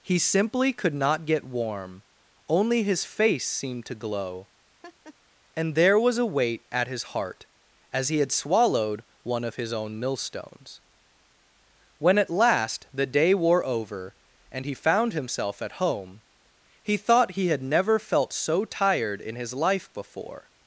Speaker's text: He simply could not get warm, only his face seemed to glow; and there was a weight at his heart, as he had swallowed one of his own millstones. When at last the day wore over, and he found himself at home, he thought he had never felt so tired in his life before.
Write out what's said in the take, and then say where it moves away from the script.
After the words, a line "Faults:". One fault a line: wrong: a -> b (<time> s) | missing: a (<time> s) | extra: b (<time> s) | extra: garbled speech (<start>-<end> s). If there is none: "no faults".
He simply could not get warm, only his face seemed to glow; and there was a weight at his heart, as he had swallowed one of his own millstones. When at last the day wore over, and he found himself at home, he thought he had never felt so tired in his life before.
Faults:
no faults